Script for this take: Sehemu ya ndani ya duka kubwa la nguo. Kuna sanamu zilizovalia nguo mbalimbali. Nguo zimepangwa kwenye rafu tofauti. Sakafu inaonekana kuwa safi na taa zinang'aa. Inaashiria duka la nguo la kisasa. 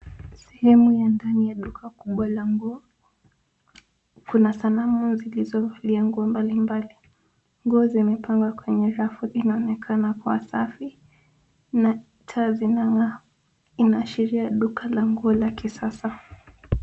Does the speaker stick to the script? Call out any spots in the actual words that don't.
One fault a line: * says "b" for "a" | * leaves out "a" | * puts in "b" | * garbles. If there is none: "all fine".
* leaves out "tofauti Sakafu"